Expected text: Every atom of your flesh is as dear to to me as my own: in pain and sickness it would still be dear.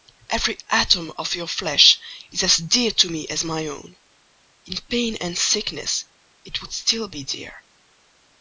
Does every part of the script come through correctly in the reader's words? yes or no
no